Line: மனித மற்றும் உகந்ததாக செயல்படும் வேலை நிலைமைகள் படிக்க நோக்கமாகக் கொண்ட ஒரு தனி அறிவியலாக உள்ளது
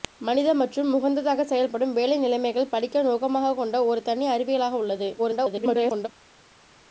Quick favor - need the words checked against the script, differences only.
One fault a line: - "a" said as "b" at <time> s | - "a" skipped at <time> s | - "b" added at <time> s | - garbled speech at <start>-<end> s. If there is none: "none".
- garbled speech at 5.2-6.1 s